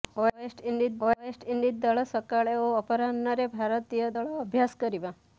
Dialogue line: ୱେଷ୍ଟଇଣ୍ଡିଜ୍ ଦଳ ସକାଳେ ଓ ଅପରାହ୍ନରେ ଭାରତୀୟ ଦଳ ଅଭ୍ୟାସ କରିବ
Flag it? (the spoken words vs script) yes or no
yes